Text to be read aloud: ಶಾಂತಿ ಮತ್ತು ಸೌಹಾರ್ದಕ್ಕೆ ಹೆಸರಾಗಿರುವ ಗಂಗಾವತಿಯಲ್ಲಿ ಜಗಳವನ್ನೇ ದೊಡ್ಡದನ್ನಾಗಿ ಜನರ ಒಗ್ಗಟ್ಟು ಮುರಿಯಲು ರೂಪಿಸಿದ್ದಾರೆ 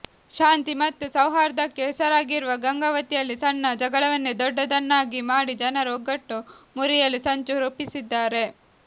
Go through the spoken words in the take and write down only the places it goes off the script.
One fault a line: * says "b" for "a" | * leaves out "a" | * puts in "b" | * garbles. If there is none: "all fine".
* puts in "ಸಣ್ಣ"
* puts in "ಮಾಡಿ"
* puts in "ಸಂಚು"